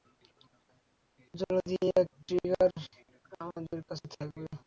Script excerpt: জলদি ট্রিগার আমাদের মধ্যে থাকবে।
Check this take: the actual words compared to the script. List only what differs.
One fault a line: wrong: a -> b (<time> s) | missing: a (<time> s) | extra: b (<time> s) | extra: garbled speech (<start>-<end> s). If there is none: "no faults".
extra: এক (1.9 s)
wrong: মধ্যে -> কাছে (3.9 s)